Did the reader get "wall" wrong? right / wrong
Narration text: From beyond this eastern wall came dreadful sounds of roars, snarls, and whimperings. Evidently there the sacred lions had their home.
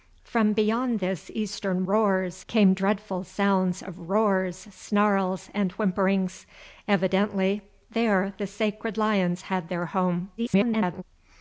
wrong